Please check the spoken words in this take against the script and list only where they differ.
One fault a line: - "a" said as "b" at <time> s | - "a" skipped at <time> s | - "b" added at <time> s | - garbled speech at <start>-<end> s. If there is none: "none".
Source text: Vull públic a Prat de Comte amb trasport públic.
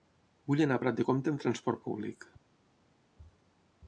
- "públic" said as "anar" at 0.7 s